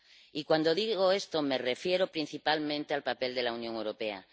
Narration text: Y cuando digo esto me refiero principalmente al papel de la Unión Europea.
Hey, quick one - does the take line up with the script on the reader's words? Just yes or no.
yes